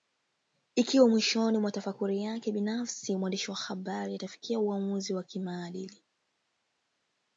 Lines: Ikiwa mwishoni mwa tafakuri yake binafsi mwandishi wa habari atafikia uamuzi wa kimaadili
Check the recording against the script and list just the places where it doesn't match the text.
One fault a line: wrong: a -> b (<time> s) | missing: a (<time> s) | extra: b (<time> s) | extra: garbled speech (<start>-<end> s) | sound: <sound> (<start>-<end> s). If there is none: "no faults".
no faults